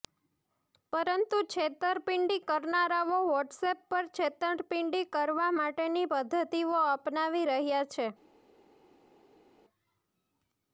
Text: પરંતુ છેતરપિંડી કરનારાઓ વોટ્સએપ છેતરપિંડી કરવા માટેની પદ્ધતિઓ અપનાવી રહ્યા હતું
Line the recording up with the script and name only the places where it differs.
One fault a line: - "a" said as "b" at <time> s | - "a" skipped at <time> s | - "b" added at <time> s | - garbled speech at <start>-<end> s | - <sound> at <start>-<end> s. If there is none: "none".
- "પર" added at 3.9 s
- "હતું" said as "છે" at 7.9 s